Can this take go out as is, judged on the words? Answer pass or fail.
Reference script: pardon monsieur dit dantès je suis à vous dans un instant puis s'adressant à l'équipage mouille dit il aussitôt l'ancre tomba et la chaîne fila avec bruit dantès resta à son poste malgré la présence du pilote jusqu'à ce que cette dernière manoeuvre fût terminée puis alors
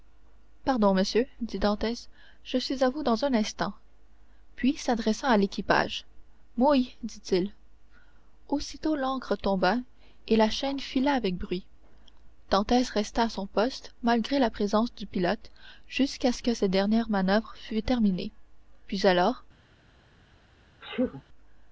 pass